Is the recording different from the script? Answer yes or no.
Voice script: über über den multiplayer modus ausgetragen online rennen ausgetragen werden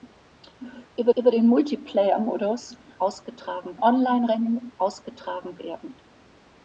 no